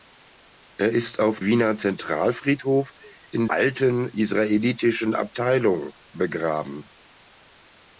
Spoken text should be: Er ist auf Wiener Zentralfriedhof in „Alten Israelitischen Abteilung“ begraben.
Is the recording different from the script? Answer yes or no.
no